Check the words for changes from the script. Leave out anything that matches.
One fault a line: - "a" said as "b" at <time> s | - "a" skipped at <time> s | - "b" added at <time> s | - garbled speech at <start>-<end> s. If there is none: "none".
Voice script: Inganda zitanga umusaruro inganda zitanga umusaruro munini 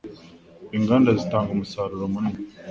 - "inganda zitanga umusaruro" skipped at 2.0 s